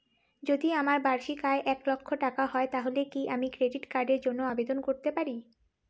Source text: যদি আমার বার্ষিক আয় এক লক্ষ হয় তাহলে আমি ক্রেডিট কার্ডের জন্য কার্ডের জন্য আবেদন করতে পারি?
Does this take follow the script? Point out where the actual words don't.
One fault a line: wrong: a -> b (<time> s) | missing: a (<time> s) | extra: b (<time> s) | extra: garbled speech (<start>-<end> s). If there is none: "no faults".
extra: টাকা (2.2 s)
extra: কি (3.0 s)
missing: কার্ডের জন্য (4.4 s)